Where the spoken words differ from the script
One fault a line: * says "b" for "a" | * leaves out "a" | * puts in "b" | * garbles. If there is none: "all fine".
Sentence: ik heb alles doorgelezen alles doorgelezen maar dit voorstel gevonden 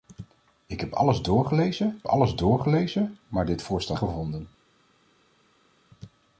all fine